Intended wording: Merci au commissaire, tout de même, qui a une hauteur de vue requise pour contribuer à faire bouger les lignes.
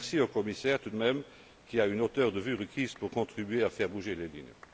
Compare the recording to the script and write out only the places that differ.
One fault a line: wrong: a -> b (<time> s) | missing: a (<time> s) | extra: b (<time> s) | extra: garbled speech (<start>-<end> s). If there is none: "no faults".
no faults